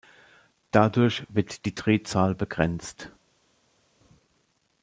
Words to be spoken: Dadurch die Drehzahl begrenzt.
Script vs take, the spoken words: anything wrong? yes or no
yes